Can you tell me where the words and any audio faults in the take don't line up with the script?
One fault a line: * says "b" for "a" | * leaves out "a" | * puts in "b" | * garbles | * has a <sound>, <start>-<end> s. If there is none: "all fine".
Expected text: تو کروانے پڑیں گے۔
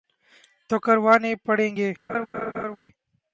* has a laugh, 2.1-2.8 s